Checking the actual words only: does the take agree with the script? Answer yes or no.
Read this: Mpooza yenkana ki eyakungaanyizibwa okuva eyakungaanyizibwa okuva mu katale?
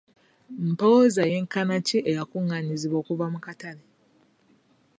no